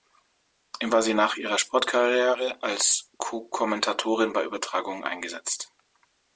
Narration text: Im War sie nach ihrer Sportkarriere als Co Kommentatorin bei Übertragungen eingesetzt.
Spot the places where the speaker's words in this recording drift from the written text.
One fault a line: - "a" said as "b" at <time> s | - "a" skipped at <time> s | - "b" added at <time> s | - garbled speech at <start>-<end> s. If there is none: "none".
none